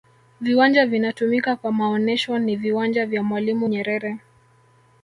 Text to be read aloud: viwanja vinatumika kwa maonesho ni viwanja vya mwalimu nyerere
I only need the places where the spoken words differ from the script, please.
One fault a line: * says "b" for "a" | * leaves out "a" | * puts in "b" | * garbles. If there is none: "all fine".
all fine